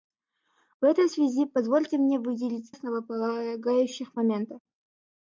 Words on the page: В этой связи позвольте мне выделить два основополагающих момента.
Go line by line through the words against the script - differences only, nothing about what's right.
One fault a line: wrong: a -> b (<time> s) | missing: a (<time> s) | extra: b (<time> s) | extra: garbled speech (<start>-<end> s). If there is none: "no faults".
missing: два (2.7 s)